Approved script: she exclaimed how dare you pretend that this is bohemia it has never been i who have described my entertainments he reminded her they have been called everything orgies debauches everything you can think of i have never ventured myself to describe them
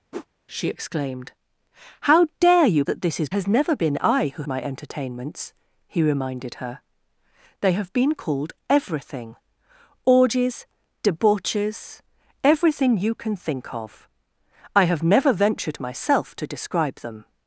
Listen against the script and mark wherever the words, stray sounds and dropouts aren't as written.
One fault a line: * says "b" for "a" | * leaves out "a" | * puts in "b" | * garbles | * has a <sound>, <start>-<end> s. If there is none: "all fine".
* has a whoosh, 0.1-0.3 s
* leaves out "pretend"
* leaves out "bohemia it"
* leaves out "have described"